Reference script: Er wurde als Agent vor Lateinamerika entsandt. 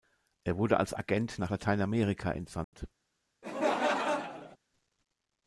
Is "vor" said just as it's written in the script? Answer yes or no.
no